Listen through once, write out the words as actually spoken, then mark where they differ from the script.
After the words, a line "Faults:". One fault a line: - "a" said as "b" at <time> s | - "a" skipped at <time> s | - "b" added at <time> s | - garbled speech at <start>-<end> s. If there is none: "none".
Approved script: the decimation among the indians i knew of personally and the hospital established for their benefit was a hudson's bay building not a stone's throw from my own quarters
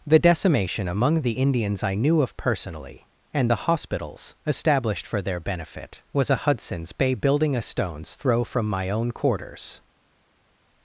the decimation among the indians i knew of personally and the hospitals established for their benefit was a hudson's bay building a stone's throw from my own quarters
Faults:
- "hospital" said as "hospitals" at 3.7 s
- "not" skipped at 7.6 s